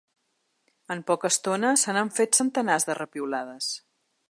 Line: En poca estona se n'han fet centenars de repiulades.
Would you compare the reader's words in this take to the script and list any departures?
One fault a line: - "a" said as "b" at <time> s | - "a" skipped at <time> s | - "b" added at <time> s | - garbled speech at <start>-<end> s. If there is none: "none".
none